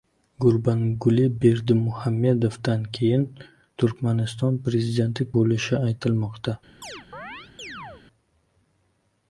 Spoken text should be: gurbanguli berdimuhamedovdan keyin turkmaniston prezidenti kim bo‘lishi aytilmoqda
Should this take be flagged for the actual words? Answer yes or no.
yes